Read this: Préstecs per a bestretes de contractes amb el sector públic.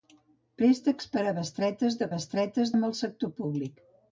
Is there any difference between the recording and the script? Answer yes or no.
yes